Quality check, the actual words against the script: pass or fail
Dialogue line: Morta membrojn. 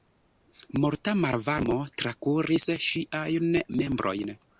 fail